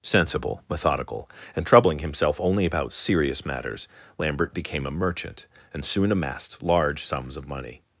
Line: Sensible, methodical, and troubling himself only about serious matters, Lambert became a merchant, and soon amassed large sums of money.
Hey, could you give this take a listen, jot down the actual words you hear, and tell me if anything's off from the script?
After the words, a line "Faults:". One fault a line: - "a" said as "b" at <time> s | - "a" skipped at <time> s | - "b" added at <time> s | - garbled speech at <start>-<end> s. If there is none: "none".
Sensible, methodical, and troubling himself only about serious matters, Lambert became a merchant, and soon amassed large sums of money.
Faults:
none